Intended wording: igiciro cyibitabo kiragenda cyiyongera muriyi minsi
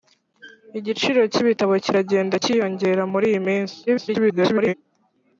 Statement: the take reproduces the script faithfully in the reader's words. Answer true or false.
false